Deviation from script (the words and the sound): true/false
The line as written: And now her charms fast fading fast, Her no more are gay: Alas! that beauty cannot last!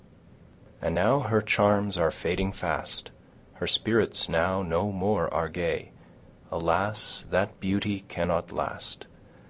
true